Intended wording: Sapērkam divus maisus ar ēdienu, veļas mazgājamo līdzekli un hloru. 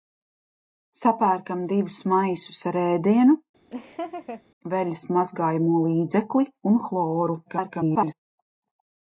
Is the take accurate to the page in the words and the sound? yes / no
no